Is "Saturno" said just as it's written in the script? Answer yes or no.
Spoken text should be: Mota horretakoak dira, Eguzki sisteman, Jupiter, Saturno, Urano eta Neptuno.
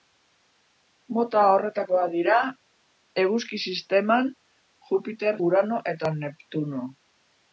no